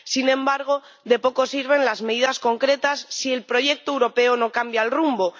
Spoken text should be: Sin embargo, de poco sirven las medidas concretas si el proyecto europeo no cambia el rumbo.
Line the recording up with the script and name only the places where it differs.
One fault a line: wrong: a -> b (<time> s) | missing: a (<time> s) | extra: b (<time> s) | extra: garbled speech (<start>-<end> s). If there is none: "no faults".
no faults